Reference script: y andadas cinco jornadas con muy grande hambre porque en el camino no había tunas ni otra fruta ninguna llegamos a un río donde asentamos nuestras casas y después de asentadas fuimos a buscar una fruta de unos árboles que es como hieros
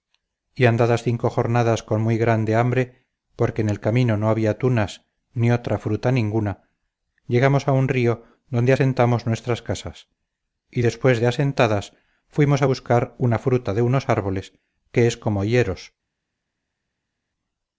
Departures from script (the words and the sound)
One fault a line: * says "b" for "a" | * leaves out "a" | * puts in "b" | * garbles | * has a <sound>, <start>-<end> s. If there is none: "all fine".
all fine